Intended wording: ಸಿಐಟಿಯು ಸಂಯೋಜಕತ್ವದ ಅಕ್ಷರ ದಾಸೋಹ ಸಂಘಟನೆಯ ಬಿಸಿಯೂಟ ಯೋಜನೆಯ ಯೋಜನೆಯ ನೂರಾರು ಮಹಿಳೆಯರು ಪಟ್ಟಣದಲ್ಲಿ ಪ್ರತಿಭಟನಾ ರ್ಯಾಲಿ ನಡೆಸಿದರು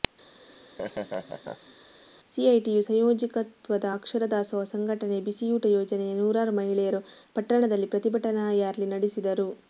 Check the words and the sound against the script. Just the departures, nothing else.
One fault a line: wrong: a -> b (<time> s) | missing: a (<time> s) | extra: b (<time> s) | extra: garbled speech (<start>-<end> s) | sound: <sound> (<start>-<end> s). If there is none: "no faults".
sound: laugh (0.4-1.7 s)
missing: ಯೋಜನೆಯ (6.1 s)